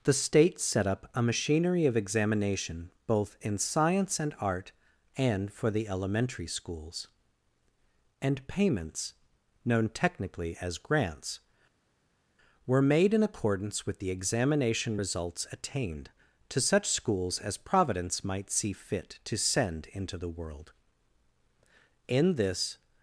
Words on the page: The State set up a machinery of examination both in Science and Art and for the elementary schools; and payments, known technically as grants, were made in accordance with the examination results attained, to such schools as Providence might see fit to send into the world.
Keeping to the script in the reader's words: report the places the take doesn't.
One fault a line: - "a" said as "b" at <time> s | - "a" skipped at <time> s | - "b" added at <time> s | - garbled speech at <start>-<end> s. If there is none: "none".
- "In this" added at 22.1 s